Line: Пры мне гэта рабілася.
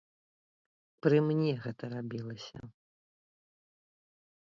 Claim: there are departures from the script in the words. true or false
false